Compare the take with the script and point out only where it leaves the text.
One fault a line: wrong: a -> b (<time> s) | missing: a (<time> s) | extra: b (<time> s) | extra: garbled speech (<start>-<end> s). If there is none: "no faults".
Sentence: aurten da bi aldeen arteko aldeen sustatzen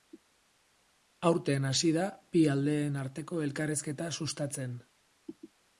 extra: hasi (1.7 s)
wrong: aldeen -> elkarrizketa (3.5 s)